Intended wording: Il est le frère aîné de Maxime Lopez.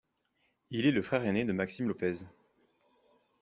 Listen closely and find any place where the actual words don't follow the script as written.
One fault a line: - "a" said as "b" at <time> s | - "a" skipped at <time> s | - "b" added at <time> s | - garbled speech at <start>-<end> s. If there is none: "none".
none